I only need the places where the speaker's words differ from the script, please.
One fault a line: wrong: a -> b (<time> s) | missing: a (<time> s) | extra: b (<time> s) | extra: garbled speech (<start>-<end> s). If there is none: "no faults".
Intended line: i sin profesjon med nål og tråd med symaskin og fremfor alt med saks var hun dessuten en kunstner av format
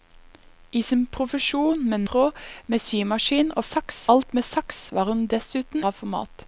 missing: nål og (2.0 s)
wrong: fremfor -> saks (3.6 s)
missing: en kunstner (5.8 s)